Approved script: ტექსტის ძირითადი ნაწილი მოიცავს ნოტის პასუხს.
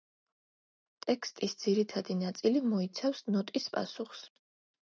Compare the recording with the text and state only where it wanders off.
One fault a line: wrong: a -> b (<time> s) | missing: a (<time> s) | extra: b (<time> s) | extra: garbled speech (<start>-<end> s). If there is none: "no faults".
no faults